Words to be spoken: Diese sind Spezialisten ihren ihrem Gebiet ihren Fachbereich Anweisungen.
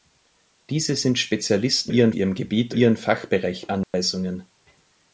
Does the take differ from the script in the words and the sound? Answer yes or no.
yes